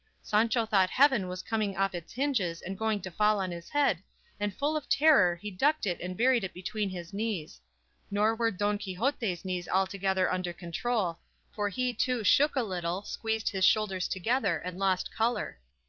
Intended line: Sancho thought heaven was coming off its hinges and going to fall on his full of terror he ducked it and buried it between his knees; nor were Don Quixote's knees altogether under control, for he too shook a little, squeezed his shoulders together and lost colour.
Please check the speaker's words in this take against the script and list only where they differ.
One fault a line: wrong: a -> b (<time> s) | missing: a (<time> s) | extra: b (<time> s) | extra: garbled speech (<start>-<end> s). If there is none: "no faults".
extra: head and (3.7 s)